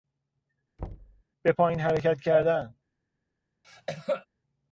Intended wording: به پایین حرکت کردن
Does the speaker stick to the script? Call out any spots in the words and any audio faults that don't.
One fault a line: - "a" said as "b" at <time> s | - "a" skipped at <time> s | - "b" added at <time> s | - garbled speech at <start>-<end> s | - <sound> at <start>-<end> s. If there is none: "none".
- thud at 0.8-1.2 s
- cough at 3.6-4.3 s